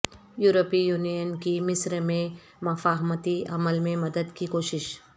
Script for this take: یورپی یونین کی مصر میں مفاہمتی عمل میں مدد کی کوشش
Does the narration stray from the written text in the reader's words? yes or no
no